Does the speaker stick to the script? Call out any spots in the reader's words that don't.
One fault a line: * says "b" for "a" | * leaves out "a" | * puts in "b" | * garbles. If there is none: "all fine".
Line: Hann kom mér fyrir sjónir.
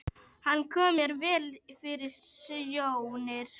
* puts in "vel"